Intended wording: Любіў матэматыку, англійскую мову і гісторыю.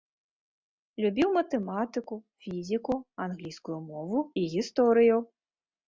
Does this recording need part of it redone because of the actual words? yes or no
yes